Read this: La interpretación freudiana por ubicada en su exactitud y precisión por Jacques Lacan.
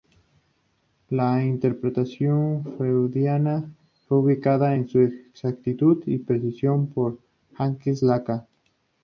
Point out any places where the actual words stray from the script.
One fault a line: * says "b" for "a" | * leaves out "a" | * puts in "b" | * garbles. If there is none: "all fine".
* says "fue" for "por"